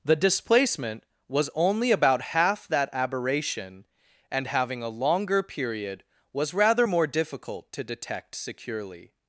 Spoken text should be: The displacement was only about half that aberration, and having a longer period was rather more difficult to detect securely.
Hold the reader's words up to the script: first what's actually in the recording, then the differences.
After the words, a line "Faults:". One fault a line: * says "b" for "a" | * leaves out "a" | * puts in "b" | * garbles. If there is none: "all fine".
The displacement was only about half that aberration, and having a longer period was rather more difficult to detect securely.
Faults:
all fine